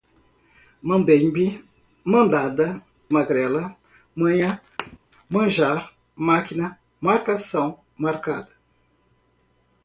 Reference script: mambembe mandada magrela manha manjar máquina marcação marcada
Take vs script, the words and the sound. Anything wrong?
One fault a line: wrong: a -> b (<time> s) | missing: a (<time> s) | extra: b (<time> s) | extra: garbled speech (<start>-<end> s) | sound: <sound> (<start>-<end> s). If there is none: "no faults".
sound: thud (4.8-5.0 s)